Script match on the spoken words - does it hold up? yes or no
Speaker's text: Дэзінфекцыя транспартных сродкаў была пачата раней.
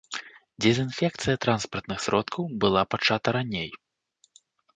yes